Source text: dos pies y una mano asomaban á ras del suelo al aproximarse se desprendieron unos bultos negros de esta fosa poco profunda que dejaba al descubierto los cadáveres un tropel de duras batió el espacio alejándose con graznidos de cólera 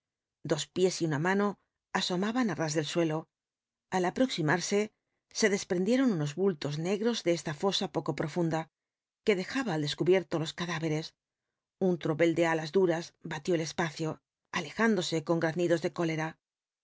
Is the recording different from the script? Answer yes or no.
yes